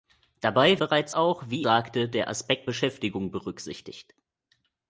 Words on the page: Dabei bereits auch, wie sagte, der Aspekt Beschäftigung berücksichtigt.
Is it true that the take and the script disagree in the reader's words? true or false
false